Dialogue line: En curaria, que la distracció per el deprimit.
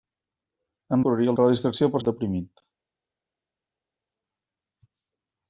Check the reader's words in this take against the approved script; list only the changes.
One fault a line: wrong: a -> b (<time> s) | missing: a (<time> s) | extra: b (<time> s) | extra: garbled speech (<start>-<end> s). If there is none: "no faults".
no faults